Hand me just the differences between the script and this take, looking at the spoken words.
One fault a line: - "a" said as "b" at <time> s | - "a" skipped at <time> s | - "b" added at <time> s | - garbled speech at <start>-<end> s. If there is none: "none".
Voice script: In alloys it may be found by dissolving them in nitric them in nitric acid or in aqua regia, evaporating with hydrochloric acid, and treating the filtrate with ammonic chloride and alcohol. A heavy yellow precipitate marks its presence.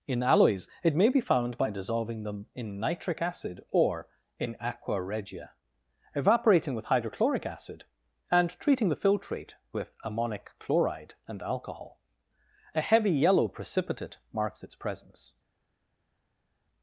- "them in nitric" skipped at 3.2 s